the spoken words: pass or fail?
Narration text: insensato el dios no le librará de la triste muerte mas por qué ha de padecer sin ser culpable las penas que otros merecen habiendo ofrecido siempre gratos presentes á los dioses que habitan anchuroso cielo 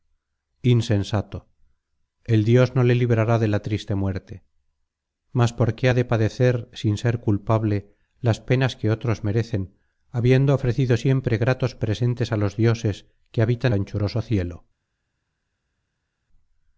pass